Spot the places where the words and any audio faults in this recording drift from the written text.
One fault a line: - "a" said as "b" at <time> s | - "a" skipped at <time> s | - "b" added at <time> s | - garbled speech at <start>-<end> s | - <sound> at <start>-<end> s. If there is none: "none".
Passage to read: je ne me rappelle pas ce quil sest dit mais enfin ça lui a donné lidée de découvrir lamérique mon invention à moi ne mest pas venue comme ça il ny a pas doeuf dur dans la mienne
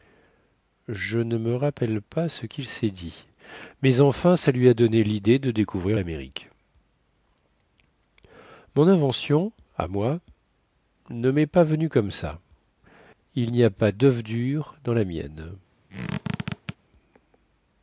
- squeak at 15.9-16.8 s